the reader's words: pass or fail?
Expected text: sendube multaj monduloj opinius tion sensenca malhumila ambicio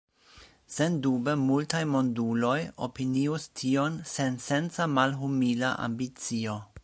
pass